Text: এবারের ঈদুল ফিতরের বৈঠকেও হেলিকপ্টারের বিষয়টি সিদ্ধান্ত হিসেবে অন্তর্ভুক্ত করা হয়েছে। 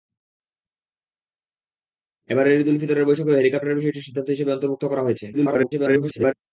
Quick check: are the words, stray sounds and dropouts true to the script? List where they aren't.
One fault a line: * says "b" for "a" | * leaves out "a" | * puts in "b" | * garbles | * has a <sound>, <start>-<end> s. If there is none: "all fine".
* garbles